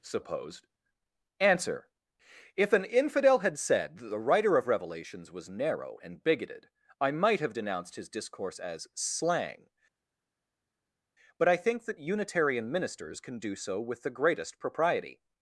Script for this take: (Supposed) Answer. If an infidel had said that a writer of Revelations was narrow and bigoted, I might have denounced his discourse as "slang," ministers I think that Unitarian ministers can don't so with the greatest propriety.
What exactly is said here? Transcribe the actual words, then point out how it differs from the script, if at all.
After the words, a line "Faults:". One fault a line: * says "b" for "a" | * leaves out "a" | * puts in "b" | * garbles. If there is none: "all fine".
(Supposed) Answer. If an infidel had said that the writer of Revelations was narrow and bigoted, I might have denounced his discourse as "slang," but I think that Unitarian ministers can do so with the greatest propriety.
Faults:
* says "the" for "a"
* says "but" for "ministers"
* says "do" for "don't"